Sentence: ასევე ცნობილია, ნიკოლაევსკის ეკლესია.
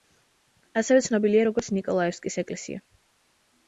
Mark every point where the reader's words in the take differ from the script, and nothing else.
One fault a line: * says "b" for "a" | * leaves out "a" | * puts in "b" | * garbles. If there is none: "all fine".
* puts in "როგორც"